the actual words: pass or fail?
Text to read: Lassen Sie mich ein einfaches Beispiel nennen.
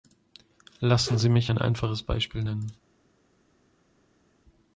pass